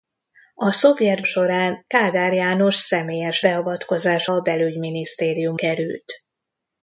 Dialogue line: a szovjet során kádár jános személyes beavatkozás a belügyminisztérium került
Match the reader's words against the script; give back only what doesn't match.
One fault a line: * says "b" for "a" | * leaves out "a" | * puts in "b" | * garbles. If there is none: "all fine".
all fine